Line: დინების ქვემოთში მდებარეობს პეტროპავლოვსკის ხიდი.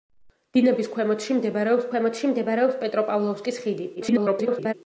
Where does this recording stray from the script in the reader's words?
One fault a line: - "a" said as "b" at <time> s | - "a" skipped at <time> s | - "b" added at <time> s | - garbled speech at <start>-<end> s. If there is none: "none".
- "ქვემოთში მდებარეობს" added at 1.9 s
- garbled speech at 4.0-4.7 s